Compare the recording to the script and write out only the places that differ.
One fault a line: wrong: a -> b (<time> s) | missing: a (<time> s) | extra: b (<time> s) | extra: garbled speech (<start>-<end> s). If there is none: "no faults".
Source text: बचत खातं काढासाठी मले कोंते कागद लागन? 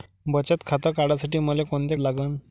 missing: कागद (2.0 s)